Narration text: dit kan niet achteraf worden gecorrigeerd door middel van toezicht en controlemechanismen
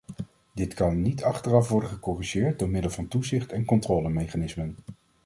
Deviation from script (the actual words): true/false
false